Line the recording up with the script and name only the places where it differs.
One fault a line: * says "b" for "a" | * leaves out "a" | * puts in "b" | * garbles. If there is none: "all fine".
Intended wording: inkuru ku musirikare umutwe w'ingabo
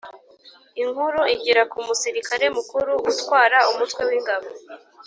* puts in "igera"
* puts in "mukuru utwara"